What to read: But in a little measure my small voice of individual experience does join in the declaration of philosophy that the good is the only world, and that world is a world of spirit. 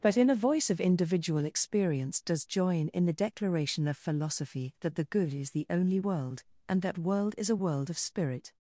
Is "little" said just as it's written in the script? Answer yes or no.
no